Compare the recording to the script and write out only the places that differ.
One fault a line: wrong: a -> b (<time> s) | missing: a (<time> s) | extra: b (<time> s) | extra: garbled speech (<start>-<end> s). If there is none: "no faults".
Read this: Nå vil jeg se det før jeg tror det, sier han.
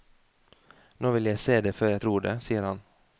no faults